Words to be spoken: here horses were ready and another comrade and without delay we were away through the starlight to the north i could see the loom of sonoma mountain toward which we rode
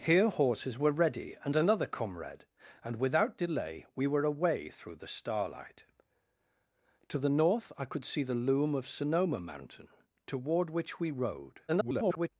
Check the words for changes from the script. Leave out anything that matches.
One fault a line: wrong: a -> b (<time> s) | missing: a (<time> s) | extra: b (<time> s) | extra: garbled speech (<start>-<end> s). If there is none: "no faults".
extra: garbled speech (11.7-12.3 s)